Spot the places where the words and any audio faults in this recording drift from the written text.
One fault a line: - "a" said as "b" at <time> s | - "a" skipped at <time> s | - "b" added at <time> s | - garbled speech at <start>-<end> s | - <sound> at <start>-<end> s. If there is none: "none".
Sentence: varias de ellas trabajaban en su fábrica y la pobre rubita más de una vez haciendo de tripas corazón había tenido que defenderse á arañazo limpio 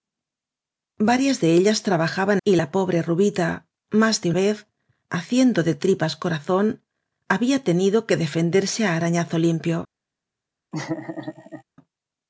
- "en su fábrica" skipped at 2.4 s
- "una" skipped at 4.3 s
- laugh at 10.7-11.6 s